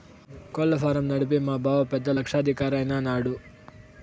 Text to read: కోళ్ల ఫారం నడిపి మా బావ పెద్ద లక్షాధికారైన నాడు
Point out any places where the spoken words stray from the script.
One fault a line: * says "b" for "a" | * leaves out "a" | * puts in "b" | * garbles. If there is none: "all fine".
all fine